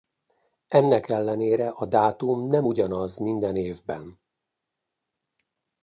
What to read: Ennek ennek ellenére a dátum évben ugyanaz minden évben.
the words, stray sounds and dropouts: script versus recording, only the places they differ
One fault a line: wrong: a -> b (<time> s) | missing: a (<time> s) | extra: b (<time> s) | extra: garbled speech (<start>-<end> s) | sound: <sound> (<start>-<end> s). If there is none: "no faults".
missing: ennek (1.1 s)
wrong: évben -> nem (2.5 s)